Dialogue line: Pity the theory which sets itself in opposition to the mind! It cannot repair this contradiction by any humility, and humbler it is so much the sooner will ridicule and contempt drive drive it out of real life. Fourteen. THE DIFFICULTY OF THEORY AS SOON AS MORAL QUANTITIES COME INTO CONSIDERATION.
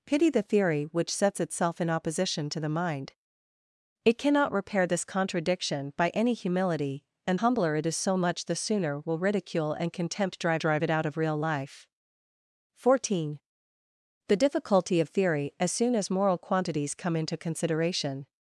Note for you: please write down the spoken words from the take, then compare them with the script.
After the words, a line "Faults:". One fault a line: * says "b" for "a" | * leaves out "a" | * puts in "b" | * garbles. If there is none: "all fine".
Pity the theory which sets itself in opposition to the mind! It cannot repair this contradiction by any humility, and humbler it is so much the sooner will ridicule and contempt drive drive it out of real life. Fourteen. THE DIFFICULTY OF THEORY AS SOON AS MORAL QUANTITIES COME INTO CONSIDERATION.
Faults:
all fine